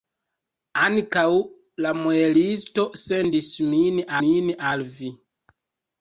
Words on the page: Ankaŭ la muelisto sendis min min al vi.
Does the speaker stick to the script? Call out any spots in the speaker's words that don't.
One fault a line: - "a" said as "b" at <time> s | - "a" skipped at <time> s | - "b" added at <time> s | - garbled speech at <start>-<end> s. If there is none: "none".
none